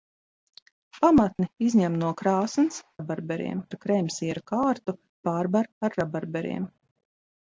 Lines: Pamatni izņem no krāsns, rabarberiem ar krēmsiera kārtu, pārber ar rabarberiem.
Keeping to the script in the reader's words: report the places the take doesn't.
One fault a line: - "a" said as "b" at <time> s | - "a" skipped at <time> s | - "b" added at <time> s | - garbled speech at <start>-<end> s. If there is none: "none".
none